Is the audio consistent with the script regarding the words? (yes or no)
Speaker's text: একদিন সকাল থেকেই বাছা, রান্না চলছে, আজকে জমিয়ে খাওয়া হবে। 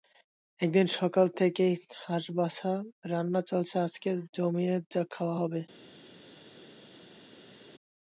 no